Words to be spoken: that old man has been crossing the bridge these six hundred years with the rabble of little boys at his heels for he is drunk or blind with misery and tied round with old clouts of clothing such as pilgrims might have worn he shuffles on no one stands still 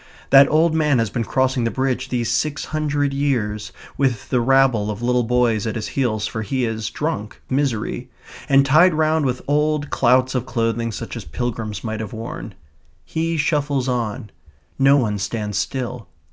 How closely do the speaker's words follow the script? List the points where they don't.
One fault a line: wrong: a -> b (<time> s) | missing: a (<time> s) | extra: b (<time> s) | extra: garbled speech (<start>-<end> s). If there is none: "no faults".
missing: or blind with (7.4 s)